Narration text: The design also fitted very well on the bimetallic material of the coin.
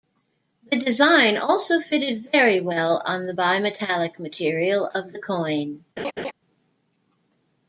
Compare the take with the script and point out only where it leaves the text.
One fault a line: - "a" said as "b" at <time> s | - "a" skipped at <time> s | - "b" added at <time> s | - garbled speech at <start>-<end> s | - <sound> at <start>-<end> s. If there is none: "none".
- laugh at 6.0-6.3 s